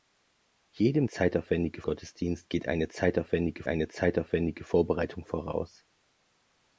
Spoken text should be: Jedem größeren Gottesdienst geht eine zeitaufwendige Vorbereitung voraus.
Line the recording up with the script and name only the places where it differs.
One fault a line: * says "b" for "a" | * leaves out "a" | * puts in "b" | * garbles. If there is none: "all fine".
* says "zeitaufwendige" for "größeren"
* puts in "eine zeitaufwendige"